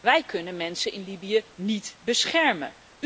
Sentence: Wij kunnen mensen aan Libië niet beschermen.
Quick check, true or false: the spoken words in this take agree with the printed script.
false